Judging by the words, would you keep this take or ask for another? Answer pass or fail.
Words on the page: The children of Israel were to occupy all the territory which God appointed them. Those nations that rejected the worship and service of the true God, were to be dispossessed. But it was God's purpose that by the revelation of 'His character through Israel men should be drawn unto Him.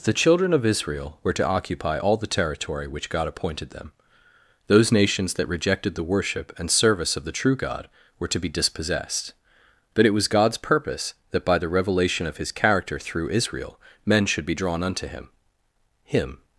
fail